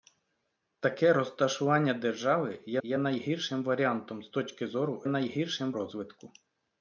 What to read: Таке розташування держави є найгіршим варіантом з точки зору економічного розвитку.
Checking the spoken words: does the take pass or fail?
fail